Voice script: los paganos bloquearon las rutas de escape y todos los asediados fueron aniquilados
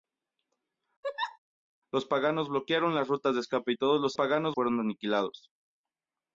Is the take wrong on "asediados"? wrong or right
wrong